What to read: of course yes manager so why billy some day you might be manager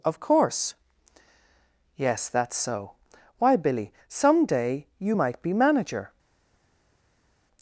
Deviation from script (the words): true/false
true